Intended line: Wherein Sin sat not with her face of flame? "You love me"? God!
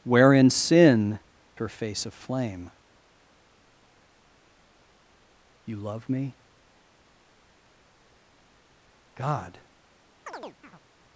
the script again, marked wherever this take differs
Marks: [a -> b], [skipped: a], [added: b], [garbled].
Wherein Sin [skipped: sat not with] her face of flame? "You love me"? God!